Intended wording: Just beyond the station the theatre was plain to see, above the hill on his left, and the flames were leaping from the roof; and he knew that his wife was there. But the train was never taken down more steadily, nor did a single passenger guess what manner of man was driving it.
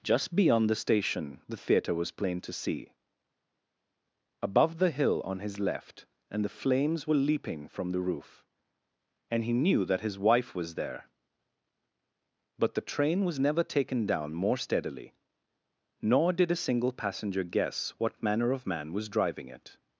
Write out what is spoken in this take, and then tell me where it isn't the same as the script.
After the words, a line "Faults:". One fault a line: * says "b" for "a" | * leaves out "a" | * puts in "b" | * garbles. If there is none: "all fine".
Just beyond the station the theatre was plain to see, above the hill on his left, and the flames were leaping from the roof; and he knew that his wife was there. But the train was never taken down more steadily, nor did a single passenger guess what manner of man was driving it.
Faults:
all fine